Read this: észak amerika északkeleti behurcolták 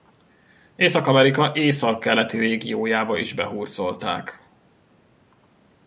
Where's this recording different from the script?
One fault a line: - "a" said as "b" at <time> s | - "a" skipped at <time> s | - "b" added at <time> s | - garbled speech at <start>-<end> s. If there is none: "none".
- "régiójába is" added at 2.4 s